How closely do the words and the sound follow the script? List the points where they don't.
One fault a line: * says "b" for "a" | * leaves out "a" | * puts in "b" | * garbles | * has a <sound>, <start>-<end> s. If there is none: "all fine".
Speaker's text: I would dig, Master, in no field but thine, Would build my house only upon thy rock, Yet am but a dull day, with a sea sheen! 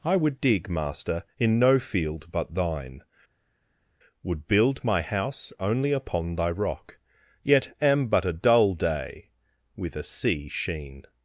all fine